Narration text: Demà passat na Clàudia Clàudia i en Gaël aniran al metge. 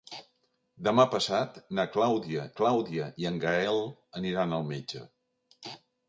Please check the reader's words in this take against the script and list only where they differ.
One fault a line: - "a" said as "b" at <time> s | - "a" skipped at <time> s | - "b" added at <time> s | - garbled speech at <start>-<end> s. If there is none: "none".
none